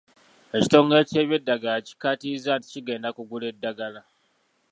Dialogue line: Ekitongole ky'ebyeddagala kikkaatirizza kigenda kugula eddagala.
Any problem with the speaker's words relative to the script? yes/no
yes